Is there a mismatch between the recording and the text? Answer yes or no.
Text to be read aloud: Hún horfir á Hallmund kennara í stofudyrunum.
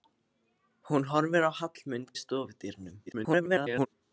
yes